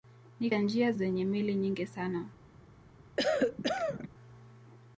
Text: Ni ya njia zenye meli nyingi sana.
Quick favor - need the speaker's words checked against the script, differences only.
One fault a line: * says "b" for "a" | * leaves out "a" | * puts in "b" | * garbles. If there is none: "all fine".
all fine